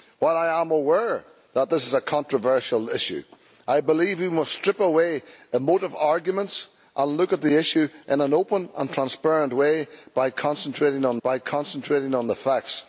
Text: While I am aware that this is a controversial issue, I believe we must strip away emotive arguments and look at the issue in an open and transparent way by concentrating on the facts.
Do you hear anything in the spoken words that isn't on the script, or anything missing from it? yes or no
yes